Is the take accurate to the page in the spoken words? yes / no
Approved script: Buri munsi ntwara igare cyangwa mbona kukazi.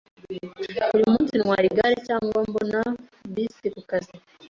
no